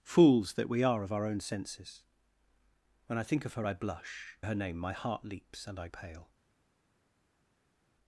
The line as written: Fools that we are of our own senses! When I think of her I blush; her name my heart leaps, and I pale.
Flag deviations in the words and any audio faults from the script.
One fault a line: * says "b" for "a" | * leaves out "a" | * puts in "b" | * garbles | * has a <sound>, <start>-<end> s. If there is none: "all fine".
all fine